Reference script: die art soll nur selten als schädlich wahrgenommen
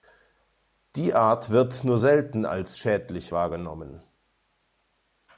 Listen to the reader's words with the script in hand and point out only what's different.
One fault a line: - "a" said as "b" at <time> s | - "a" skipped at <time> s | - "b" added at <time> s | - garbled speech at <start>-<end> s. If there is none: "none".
- "soll" said as "wird" at 1.5 s